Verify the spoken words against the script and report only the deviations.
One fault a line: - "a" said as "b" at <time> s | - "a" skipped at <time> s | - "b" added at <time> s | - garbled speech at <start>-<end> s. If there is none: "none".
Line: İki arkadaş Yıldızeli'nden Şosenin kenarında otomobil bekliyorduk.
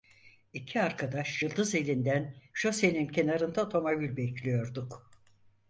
none